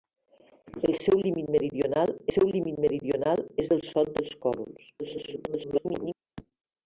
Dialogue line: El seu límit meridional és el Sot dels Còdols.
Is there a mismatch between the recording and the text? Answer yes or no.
yes